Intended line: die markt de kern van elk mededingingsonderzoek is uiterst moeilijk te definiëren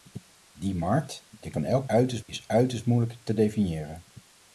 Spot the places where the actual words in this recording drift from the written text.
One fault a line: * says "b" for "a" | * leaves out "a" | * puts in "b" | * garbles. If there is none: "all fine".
* leaves out "kern"
* says "uiterst" for "mededingingsonderzoek"